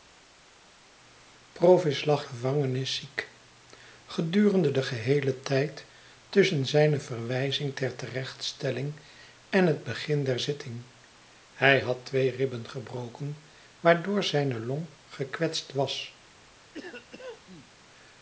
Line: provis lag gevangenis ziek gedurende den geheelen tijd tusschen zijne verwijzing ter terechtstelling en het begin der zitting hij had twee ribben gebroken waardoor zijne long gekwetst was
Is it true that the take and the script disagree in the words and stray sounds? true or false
true